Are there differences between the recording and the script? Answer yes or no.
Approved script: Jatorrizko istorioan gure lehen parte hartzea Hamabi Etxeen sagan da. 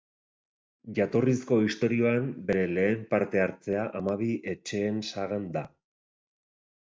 yes